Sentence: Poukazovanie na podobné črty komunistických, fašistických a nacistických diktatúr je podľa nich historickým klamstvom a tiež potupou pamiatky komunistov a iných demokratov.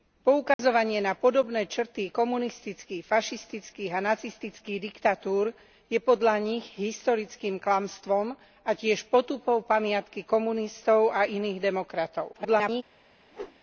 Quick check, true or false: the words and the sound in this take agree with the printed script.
false